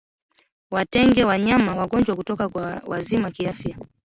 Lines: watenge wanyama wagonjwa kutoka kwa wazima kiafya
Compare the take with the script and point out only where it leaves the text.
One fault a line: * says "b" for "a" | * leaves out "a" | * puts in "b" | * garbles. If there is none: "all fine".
all fine